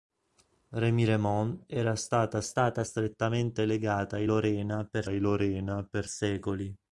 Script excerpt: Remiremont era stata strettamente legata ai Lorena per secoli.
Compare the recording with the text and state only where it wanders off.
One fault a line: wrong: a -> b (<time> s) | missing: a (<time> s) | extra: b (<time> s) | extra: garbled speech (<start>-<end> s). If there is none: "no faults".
extra: stata (2.4 s)
extra: ai Lorena per (5.1 s)